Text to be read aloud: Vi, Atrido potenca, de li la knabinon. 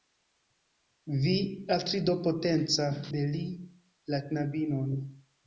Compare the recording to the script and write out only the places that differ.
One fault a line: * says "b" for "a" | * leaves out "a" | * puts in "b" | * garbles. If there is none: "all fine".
all fine